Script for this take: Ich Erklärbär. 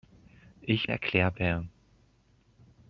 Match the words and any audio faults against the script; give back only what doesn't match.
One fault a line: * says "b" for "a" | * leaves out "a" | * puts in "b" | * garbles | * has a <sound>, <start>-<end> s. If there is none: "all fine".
all fine